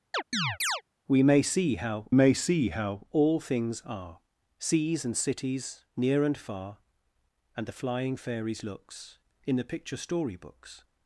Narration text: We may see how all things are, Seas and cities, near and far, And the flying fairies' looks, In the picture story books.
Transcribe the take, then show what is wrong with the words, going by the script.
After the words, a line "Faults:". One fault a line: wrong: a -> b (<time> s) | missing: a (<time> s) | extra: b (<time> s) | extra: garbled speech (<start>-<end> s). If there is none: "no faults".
We may see how may see how all things are, Seas and cities, near and far, And the flying fairies' looks, In the picture story books.
Faults:
extra: may see how (2.1 s)